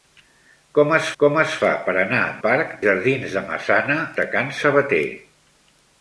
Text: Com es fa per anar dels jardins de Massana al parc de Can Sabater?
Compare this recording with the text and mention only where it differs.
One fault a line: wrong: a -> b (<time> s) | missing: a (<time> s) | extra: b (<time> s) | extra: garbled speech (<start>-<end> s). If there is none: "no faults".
extra: com es (1.2 s)
wrong: dels -> parc (2.4 s)
missing: al parc (4.0 s)